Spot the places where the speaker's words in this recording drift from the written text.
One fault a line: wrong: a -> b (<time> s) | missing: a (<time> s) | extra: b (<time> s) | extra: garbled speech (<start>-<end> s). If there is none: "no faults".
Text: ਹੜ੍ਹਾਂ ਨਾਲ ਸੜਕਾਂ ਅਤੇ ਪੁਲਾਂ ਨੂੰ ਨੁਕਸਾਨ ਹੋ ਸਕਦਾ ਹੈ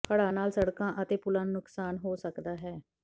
no faults